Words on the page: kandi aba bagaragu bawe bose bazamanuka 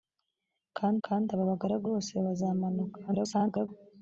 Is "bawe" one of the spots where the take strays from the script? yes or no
yes